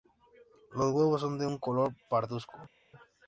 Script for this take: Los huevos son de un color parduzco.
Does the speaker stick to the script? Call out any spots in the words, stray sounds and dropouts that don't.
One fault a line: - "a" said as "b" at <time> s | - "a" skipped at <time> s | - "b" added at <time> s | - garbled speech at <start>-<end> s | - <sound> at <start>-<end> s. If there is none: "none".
none